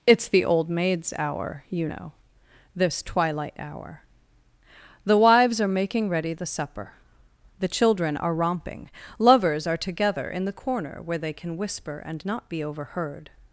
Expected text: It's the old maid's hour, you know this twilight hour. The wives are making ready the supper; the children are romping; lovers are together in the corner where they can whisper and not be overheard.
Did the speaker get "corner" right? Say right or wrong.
right